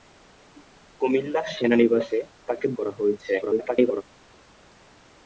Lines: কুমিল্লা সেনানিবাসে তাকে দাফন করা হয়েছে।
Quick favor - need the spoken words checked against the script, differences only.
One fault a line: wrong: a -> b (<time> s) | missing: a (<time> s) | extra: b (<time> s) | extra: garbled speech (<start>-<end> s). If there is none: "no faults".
missing: দাফন (2.6 s)
extra: garbled speech (3.4-4.0 s)